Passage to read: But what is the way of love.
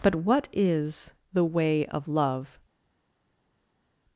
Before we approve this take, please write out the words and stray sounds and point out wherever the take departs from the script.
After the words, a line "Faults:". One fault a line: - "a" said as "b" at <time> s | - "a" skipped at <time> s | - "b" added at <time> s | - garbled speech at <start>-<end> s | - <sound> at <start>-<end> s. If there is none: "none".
But what is the way of love.
Faults:
none